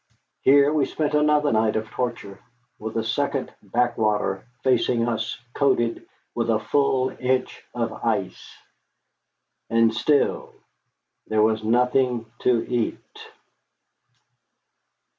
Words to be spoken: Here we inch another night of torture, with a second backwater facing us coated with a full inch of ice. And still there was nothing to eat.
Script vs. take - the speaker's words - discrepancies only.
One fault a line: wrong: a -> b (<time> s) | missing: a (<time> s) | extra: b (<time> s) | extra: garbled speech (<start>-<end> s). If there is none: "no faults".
wrong: inch -> spent (0.9 s)